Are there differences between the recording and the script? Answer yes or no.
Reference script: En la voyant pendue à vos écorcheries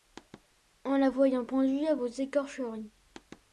no